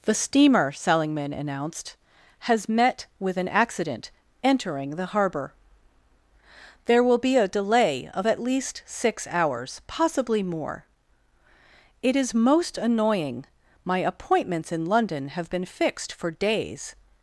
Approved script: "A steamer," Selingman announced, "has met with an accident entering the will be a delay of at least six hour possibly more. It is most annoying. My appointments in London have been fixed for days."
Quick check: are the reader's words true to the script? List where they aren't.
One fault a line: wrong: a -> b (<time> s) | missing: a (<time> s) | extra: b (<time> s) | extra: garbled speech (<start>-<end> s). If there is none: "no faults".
wrong: A -> The (0.0 s)
extra: harbour There (5.0 s)
wrong: hour -> hours (9.3 s)